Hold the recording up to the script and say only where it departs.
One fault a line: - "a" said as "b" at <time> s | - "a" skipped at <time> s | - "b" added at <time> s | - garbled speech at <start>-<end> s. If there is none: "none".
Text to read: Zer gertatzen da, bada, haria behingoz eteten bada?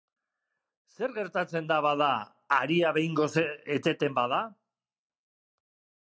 none